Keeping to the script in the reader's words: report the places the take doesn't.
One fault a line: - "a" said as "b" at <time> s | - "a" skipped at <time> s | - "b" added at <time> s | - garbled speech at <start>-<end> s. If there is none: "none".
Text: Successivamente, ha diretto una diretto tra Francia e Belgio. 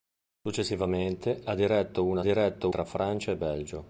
none